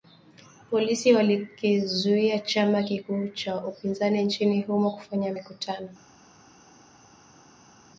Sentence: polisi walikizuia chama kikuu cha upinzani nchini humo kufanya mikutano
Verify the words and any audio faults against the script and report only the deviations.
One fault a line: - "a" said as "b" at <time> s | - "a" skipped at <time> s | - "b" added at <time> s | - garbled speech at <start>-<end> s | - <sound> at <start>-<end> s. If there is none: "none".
none